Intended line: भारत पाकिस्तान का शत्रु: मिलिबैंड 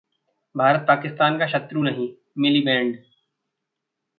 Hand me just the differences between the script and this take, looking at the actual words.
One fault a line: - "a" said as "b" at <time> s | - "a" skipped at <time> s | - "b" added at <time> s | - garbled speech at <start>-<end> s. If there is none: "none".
- "नहीं" added at 1.8 s